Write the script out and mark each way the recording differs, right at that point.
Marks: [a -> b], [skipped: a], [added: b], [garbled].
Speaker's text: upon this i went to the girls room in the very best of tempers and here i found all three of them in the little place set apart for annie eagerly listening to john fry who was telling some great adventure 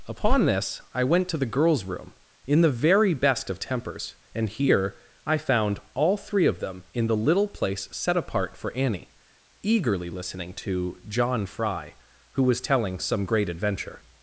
upon this i went to the girls room in the very best of tempers and here i found all three of them in the little place set apart for annie eagerly listening to john fry who was telling some great adventure